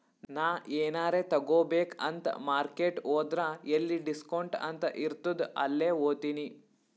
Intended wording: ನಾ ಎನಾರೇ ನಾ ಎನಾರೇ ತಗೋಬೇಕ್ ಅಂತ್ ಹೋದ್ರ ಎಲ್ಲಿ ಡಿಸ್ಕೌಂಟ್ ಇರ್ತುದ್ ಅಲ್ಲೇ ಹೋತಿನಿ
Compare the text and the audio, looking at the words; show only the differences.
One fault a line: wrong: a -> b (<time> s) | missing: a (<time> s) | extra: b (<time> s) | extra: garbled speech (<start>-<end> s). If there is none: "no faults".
missing: ನಾ ಎನಾರೇ (1.2 s)
extra: ಮಾರ್ಕೆಟ್ (2.5 s)
extra: ಅಂತ್ (4.7 s)